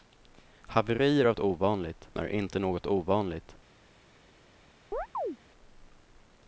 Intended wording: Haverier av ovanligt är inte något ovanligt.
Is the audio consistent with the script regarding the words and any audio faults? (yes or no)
no